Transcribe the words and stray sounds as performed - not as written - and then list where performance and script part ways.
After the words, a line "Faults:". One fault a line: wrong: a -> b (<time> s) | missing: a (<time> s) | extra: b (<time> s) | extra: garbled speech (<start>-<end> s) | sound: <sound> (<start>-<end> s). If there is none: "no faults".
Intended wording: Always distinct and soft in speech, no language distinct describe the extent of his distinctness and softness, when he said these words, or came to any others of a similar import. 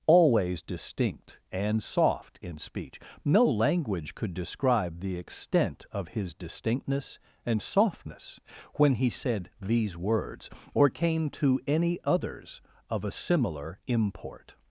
Always distinct and soft in speech, no language could describe the extent of his distinctness and softness, when he said these words, or came to any others of a similar import.
Faults:
wrong: distinct -> could (4.2 s)